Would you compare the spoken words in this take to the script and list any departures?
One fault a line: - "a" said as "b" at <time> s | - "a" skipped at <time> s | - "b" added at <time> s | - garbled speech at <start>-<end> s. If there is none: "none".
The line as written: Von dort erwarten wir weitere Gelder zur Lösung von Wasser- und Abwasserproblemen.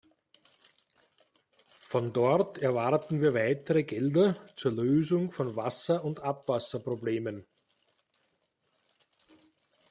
none